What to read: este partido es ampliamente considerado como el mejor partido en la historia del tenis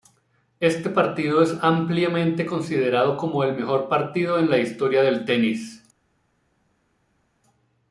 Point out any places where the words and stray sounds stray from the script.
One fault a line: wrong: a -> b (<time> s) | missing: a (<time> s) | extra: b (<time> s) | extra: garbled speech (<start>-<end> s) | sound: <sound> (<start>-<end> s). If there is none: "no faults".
no faults